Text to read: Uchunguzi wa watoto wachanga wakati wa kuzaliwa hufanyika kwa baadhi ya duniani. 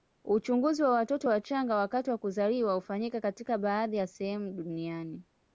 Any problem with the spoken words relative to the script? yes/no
yes